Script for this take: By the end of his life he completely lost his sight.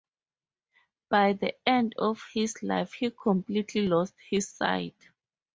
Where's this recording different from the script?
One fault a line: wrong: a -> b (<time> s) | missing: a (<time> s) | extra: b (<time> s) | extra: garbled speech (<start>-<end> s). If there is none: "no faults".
no faults